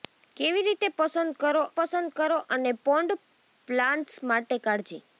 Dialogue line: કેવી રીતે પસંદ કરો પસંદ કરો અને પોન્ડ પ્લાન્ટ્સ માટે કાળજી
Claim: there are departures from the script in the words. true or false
false